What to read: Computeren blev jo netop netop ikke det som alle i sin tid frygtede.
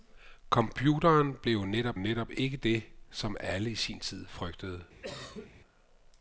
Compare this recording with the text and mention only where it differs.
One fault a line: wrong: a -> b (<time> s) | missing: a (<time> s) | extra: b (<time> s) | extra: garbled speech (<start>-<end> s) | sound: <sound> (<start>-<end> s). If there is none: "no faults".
sound: cough (5.0-5.5 s)